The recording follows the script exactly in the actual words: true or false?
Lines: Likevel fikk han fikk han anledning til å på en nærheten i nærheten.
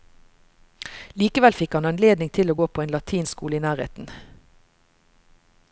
false